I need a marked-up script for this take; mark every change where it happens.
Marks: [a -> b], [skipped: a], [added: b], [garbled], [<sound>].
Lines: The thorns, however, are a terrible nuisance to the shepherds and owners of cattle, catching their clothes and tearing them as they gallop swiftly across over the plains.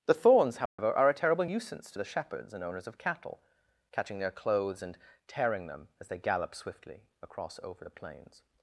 The thorns, however, [dropout] are a terrible nuisance to the shepherds and owners of cattle, catching their clothes and tearing them as they gallop swiftly across over the plains.